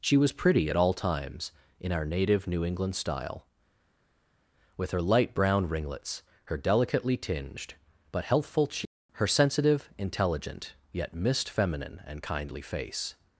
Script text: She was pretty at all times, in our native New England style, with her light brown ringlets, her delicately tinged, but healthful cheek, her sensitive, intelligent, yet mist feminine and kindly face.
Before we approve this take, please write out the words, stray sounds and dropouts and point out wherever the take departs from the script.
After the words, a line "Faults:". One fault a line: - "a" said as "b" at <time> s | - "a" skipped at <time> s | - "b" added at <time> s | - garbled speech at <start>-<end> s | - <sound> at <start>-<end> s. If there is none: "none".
She was pretty at all times, in our native New England style, with her light brown ringlets, her delicately tinged, but healthful cheek, her sensitive, intelligent, yet mist feminine and kindly face.
Faults:
none